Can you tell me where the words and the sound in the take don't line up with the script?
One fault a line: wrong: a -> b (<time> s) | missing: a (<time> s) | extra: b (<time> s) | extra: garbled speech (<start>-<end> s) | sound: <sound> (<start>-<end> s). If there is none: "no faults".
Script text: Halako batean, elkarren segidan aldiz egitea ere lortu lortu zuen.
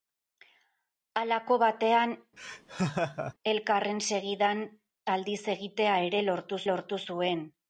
sound: laugh (2.4-3.3 s)